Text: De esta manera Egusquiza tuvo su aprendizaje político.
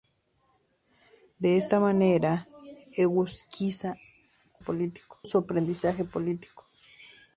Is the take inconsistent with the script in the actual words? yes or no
yes